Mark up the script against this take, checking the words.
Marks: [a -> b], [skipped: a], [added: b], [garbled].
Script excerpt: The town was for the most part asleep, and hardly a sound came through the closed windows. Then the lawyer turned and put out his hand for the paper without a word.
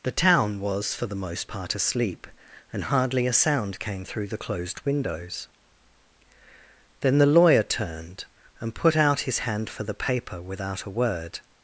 The town was for the most part asleep, and hardly a sound came through the closed windows. Then the lawyer turned and put out his hand for the paper without a word.